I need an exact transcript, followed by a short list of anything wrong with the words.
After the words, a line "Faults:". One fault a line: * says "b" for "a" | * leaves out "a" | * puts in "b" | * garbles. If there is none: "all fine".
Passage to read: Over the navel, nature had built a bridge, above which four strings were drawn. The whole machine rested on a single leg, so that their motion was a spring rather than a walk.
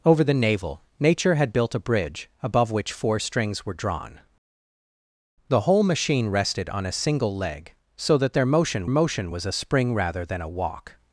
Over the navel, nature had built a bridge, above which four strings were drawn. The whole machine rested on a single leg, so that their motion motion was a spring rather than a walk.
Faults:
* puts in "motion"